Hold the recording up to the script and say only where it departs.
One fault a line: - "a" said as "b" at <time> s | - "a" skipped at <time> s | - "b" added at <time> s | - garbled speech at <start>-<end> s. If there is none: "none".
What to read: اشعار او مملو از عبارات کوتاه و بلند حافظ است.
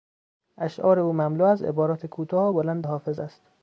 none